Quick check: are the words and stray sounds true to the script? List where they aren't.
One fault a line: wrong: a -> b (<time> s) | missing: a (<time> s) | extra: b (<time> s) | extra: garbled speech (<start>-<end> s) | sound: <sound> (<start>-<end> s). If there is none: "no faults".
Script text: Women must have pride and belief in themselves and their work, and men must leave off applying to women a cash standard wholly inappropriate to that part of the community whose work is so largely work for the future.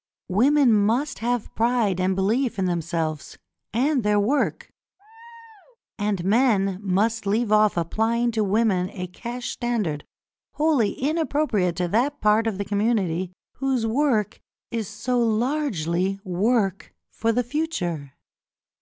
sound: laugh (5.0-5.8 s)